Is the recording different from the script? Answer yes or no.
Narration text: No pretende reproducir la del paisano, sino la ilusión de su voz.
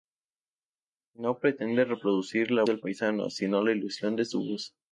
no